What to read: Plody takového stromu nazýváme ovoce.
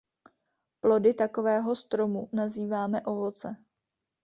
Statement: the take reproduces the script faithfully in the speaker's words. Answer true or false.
true